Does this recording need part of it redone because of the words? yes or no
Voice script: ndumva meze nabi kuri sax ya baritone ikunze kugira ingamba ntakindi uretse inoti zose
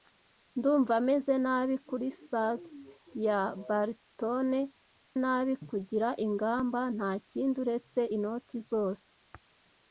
yes